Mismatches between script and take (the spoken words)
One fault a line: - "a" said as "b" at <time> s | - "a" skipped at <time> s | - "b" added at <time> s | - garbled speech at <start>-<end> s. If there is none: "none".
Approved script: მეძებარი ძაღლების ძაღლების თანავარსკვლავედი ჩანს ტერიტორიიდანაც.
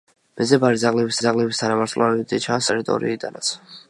none